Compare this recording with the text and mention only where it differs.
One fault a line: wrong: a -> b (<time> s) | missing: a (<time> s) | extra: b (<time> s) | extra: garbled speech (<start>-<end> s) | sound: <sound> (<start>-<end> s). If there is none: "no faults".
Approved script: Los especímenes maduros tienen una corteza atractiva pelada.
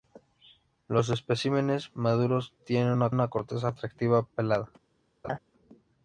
extra: una (3.1 s)
sound: laugh (5.2-5.4 s)